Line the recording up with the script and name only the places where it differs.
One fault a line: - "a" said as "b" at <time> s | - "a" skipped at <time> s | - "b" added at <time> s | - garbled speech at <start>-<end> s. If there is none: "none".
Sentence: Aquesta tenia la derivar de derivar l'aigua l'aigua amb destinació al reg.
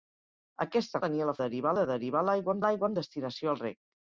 none